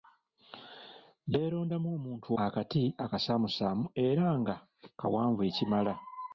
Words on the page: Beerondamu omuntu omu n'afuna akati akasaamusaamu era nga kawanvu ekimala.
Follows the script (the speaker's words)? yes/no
no